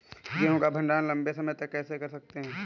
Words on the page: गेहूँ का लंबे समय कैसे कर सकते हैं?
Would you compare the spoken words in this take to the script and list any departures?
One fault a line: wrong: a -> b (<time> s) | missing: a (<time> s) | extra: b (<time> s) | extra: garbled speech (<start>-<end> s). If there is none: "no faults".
extra: भण्डारण (0.7 s)
extra: तक (1.5 s)